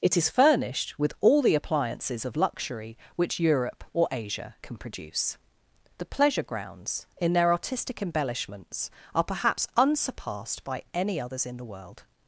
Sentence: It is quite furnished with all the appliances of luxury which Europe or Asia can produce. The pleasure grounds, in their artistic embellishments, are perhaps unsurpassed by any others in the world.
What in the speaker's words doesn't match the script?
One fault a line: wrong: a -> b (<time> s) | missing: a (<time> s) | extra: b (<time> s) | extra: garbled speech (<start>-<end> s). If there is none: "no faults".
missing: quite (0.3 s)